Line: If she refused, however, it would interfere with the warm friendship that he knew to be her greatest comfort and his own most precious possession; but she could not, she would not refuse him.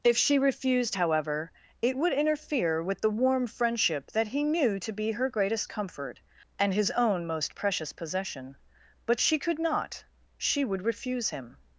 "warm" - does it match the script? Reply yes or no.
yes